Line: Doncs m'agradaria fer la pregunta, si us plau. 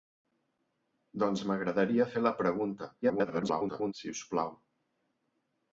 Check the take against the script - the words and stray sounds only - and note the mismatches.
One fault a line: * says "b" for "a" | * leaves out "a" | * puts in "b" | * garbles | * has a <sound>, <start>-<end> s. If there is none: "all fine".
* garbles